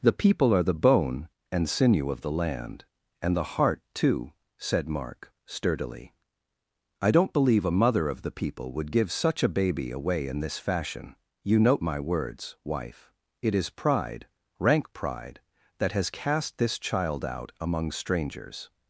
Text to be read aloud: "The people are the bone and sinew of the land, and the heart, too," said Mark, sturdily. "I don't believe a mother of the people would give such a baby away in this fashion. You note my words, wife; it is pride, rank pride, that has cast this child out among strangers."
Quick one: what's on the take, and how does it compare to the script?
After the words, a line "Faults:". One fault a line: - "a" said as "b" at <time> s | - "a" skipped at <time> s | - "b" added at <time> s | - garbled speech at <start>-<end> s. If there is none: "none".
"The people are the bone and sinew of the land, and the heart, too," said Mark, sturdily. "I don't believe a mother of the people would give such a baby away in this fashion. You note my words, wife; it is pride, rank pride, that has cast this child out among strangers."
Faults:
none